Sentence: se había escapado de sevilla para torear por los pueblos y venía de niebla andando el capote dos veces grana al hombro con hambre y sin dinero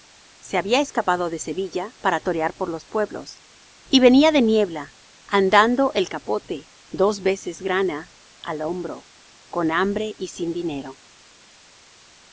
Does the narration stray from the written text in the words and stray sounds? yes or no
no